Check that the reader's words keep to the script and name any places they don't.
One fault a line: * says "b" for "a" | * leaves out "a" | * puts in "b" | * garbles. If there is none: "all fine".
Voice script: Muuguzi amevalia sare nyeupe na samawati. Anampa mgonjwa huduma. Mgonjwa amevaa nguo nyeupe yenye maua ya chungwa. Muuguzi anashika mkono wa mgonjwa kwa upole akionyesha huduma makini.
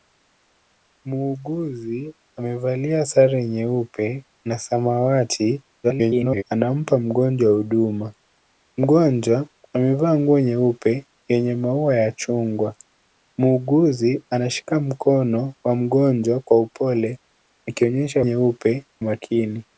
* garbles
* says "nyeupe" for "huduma"